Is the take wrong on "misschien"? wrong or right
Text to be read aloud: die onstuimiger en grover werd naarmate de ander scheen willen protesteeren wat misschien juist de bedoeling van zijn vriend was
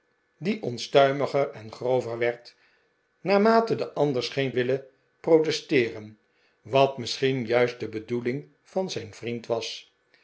right